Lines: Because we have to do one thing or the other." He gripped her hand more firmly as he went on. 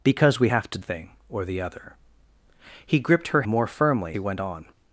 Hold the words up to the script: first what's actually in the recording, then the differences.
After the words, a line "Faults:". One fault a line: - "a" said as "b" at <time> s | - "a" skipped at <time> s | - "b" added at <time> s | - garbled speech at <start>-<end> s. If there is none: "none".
Because we have to thing or the other." He gripped her more firmly he went on.
Faults:
- "do one" skipped at 0.8 s
- "hand" skipped at 3.4 s
- "as" skipped at 4.2 s